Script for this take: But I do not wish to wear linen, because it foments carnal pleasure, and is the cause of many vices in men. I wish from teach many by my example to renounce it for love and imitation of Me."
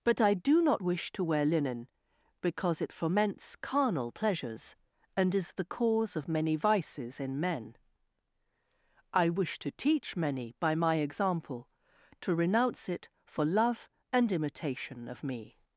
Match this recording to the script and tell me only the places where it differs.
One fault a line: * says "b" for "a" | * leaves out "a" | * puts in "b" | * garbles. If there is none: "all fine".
* says "pleasures" for "pleasure"
* says "to" for "from"